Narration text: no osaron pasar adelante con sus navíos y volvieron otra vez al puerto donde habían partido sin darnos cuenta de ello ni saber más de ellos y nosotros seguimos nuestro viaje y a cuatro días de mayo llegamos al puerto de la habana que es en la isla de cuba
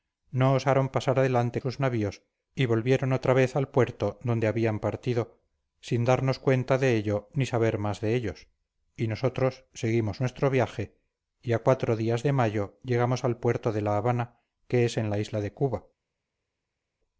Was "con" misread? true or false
true